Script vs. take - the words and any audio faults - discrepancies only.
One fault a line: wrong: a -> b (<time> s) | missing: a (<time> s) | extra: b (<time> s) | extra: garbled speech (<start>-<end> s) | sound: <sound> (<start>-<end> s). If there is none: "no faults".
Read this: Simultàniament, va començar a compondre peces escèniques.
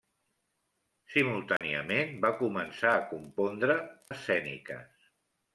sound: dropout (1.6-1.6 s)
missing: peces (3.8 s)